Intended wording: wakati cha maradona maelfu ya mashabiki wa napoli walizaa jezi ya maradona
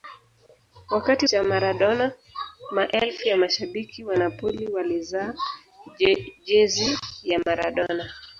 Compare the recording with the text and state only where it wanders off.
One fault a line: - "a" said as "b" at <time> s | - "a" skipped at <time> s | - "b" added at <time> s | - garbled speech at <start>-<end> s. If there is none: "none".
none